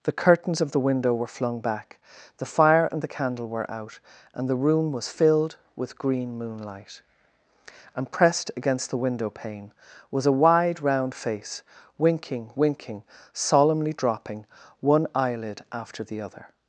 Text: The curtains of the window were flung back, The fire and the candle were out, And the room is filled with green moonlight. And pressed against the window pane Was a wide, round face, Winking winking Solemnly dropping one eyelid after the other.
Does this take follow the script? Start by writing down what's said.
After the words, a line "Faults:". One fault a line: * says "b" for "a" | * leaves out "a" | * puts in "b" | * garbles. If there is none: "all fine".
The curtains of the window were flung back, The fire and the candle were out, And the room was filled with green moonlight. And pressed against the window pane Was a wide, round face, Winking winking Solemnly dropping one eyelid after the other.
Faults:
* says "was" for "is"